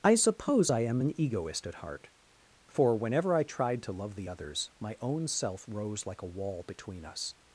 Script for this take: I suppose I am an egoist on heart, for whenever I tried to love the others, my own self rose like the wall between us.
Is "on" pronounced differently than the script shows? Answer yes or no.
yes